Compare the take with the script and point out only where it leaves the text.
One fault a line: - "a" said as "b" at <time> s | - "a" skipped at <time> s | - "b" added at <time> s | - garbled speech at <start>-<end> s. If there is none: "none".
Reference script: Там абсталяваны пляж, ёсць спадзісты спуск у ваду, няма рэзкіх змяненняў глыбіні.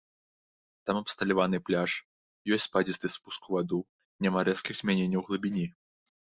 none